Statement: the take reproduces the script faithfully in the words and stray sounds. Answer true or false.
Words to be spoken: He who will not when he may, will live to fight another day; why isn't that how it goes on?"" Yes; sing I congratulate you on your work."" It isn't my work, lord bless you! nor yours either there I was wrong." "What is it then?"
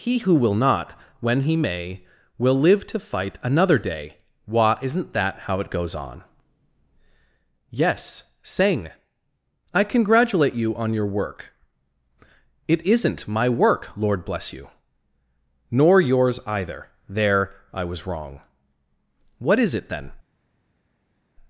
true